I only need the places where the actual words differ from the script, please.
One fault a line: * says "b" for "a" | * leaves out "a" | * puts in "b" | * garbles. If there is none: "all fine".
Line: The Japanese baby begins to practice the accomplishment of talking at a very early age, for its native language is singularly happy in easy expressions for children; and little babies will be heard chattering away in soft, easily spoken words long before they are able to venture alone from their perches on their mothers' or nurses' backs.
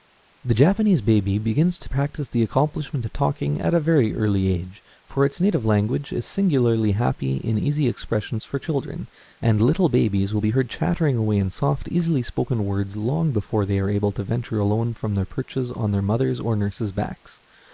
all fine